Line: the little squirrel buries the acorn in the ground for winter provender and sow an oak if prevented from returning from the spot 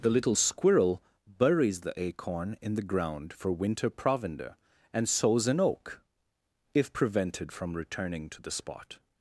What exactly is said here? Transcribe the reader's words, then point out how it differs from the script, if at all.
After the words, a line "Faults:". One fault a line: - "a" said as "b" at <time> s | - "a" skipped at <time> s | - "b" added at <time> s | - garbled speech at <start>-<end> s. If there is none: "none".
the little squirrel buries the acorn in the ground for winter provender and sows an oak if prevented from returning to the spot
Faults:
- "sow" said as "sows" at 5.1 s
- "from" said as "to" at 8.3 s